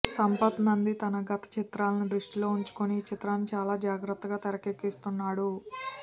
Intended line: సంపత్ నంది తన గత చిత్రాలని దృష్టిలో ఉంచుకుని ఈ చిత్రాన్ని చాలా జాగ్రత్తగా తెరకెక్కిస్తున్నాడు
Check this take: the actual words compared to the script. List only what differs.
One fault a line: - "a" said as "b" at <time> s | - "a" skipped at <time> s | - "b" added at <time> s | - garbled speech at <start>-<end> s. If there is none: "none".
none